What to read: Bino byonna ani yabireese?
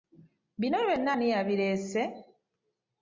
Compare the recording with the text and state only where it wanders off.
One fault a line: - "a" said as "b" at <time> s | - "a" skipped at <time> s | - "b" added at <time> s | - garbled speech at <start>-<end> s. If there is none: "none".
none